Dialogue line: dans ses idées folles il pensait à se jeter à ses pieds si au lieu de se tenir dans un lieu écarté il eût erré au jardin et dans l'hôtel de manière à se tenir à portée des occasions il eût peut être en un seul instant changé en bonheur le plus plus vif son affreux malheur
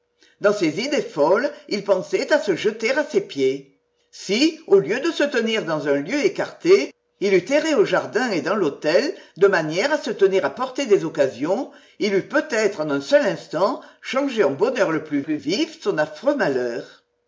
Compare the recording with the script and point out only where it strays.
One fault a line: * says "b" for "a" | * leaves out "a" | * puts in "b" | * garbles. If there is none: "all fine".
all fine